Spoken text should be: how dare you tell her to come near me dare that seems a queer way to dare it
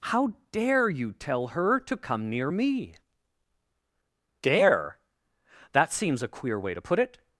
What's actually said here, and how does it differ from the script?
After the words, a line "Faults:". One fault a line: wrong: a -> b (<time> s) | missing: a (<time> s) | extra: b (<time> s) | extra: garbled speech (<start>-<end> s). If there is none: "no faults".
how dare you tell her to come near me dare that seems a queer way to put it
Faults:
wrong: dare -> put (6.8 s)